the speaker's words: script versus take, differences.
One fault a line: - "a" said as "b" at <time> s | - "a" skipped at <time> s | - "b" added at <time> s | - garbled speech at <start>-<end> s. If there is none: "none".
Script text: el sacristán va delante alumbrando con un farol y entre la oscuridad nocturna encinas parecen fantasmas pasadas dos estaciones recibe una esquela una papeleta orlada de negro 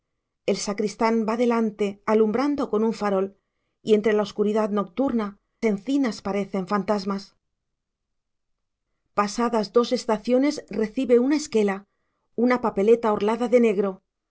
none